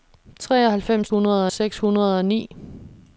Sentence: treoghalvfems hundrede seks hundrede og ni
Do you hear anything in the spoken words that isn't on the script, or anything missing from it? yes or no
no